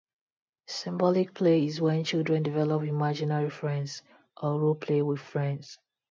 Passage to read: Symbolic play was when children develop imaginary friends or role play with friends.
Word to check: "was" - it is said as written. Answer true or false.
false